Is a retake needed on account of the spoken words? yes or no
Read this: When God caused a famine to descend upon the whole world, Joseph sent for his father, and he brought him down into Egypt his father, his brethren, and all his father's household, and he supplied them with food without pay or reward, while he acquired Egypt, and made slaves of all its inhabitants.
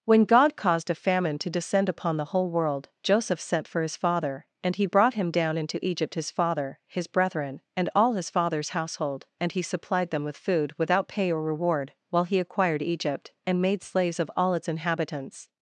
no